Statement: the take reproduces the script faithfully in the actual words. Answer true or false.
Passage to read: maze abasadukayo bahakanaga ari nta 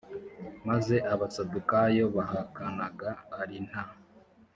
true